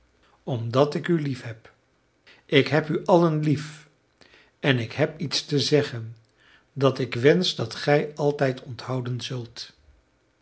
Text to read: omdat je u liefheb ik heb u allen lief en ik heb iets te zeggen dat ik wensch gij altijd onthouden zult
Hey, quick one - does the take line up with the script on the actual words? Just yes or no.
no